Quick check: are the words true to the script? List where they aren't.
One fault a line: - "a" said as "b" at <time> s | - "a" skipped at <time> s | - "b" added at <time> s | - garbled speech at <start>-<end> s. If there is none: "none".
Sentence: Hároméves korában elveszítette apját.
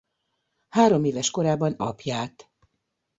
- "elveszítette" skipped at 1.8 s